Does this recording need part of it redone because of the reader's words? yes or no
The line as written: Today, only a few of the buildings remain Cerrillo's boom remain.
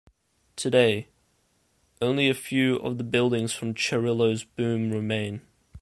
yes